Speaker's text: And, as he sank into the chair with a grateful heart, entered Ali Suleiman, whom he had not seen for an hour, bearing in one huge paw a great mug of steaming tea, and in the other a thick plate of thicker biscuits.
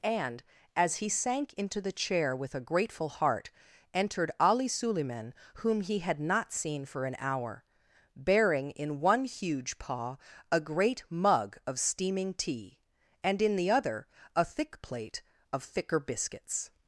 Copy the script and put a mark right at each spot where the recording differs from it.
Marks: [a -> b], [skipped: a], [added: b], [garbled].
And, as he sank into the chair with a grateful heart, entered Ali Suleiman, whom he had not seen for an hour, bearing in one huge paw a great mug of steaming tea, and in the other a thick plate of thicker biscuits.